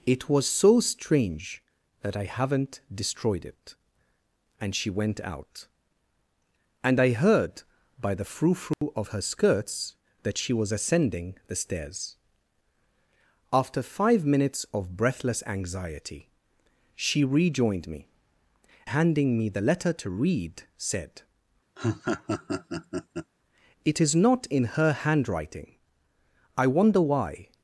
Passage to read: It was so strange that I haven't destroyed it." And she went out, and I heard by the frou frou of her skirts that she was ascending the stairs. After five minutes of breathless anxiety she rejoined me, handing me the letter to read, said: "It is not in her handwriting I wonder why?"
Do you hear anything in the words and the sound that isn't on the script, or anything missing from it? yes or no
yes